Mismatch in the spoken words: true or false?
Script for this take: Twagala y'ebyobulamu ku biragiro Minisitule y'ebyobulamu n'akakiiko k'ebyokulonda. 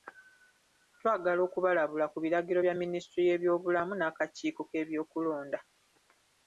true